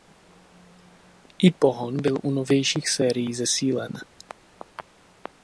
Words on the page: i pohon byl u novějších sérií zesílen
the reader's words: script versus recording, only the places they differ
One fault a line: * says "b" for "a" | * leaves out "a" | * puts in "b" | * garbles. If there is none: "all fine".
all fine